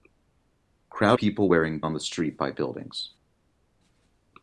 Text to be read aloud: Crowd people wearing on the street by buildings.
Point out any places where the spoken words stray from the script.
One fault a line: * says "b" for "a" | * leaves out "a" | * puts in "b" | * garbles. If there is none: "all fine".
all fine